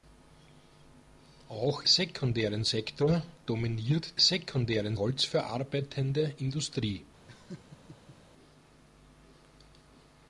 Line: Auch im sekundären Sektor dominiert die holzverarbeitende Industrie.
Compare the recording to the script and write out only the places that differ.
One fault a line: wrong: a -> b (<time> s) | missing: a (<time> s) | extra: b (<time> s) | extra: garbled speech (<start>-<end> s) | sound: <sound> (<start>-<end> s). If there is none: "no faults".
missing: im (1.8 s)
wrong: die -> sekundären (4.2 s)
sound: laugh (7.3-8.2 s)